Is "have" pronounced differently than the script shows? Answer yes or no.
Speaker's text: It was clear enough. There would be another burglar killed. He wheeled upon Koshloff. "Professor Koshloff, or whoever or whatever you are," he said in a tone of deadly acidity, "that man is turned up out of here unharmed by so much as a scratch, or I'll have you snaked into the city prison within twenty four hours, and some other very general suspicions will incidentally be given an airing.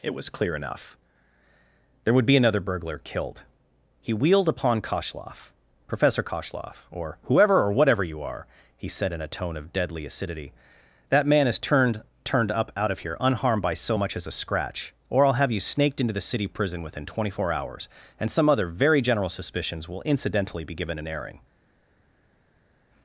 no